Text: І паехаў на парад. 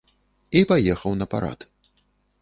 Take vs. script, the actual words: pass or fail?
pass